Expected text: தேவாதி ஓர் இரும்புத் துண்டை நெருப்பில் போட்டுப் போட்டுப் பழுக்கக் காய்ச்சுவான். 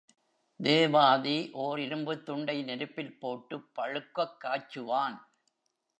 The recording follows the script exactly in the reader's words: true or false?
false